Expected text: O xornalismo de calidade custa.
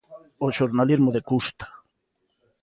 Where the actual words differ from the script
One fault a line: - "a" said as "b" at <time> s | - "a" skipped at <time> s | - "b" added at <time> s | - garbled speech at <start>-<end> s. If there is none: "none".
- "calidade" skipped at 1.2 s